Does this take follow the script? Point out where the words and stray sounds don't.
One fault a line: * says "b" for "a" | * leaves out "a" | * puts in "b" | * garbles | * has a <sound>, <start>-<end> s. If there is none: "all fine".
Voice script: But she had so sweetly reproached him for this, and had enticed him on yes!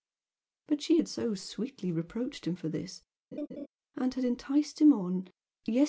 * has a laugh, 3.3-3.7 s